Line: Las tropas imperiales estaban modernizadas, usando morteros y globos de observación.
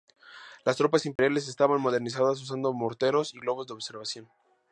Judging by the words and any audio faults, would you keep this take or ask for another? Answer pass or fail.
fail